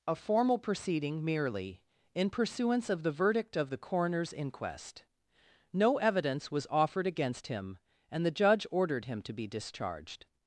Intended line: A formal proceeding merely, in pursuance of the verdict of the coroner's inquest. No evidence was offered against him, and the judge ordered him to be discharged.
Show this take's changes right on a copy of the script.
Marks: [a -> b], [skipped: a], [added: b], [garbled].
A formal proceeding merely, in pursuance of the verdict of the coroner's inquest. No evidence was offered against him, and the judge ordered him to be discharged.